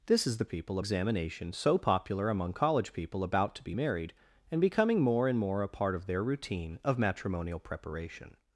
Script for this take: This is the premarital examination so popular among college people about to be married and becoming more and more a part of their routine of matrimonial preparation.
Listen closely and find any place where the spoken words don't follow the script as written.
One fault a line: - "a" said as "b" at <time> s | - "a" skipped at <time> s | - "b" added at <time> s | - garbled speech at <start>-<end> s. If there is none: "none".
- "premarital" said as "people" at 0.5 s